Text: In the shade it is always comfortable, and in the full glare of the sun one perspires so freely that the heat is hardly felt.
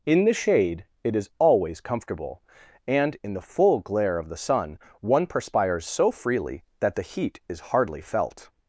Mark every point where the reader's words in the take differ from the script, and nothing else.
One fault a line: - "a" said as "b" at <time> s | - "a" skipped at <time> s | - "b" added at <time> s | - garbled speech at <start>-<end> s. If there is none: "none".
none